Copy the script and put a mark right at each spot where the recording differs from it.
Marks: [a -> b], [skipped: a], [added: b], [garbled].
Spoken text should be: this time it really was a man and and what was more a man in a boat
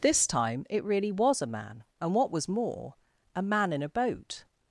this time it really was a man and [skipped: and] what was more a man in a boat